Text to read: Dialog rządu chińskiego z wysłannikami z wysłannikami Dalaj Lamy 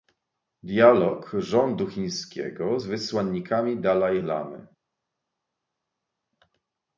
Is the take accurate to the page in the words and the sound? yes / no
no